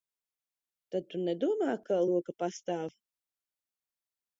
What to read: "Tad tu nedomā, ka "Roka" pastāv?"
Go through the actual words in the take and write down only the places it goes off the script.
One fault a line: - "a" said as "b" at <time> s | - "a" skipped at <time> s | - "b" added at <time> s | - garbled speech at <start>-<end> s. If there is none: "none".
none